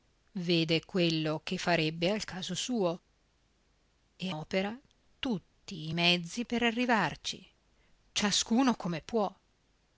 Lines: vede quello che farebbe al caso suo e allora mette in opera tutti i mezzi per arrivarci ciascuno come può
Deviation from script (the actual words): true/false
true